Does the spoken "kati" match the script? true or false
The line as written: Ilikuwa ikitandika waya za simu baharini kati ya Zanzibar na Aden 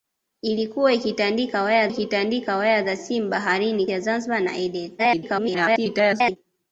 false